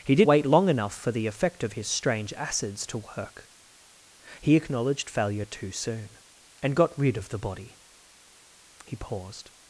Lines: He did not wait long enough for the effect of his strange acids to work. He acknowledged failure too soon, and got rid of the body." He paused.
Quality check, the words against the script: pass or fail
fail